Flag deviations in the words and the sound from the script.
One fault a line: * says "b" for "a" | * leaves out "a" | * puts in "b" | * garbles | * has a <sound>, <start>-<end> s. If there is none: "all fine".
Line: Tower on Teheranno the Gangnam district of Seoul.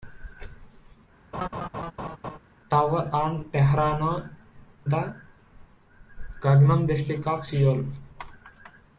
* has a laugh, 1.3-2.4 s